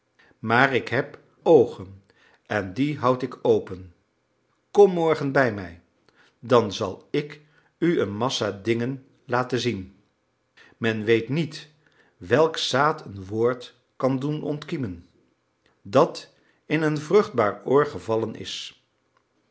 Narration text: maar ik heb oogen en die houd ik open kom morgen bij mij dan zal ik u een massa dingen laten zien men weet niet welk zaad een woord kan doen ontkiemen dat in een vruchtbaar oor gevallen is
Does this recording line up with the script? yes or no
yes